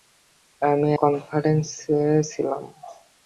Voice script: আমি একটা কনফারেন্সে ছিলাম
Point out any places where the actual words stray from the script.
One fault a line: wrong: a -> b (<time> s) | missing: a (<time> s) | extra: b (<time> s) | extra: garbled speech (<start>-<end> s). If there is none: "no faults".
missing: একটা (0.9 s)